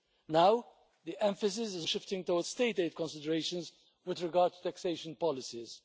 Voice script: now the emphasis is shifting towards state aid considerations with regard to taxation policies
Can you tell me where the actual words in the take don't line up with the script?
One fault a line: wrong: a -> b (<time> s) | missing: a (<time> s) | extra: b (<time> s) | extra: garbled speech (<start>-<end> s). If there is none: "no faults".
no faults